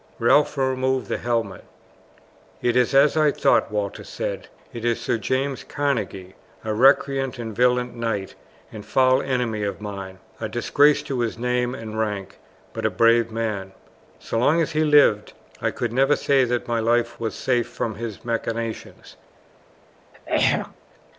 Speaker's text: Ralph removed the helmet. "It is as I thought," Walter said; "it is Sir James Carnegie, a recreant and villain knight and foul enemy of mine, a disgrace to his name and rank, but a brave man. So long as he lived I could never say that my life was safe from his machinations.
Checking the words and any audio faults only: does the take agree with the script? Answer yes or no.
no